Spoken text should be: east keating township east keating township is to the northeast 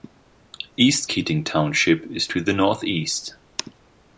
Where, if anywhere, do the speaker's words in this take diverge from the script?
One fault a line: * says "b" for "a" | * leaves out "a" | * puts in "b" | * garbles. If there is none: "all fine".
* leaves out "east keating township"